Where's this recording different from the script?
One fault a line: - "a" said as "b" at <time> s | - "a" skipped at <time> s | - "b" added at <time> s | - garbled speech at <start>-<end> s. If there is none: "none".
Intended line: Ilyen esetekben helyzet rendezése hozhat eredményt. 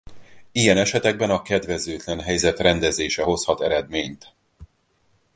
- "a kedvezőtlen" added at 1.3 s